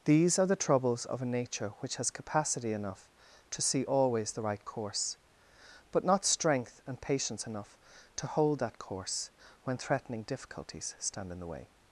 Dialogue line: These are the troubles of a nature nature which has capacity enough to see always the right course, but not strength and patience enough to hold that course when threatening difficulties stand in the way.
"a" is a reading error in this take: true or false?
false